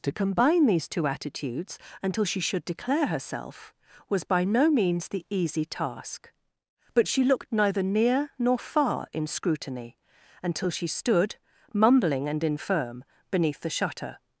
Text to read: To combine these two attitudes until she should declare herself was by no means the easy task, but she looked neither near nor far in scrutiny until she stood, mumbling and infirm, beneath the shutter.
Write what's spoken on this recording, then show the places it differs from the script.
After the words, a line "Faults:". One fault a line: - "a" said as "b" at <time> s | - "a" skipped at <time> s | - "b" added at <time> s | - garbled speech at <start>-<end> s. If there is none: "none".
To combine these two attitudes until she should declare herself was by no means the easy task, but she looked neither near nor far in scrutiny until she stood, mumbling and infirm, beneath the shutter.
Faults:
none